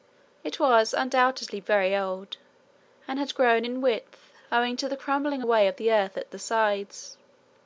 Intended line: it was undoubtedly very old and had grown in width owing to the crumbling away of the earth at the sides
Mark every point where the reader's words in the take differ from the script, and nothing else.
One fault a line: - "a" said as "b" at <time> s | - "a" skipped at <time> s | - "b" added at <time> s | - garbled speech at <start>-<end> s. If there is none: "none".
none